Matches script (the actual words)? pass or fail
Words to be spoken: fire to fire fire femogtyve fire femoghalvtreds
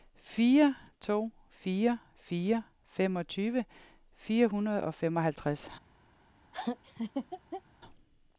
fail